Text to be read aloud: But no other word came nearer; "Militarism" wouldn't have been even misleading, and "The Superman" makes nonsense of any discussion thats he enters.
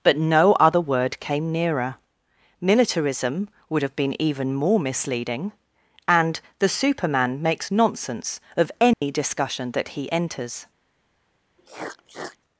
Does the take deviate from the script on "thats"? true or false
true